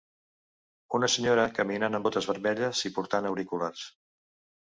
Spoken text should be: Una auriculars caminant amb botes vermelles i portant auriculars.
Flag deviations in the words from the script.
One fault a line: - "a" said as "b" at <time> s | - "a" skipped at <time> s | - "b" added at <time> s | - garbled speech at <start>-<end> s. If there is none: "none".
- "auriculars" said as "senyora" at 1.1 s